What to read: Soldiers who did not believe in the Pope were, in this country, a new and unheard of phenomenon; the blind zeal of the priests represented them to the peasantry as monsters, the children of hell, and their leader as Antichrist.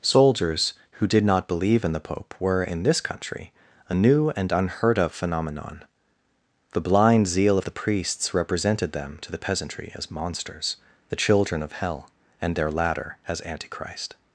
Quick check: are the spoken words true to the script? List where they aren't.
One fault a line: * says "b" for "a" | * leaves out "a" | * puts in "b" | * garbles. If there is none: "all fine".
* says "ladder" for "leader"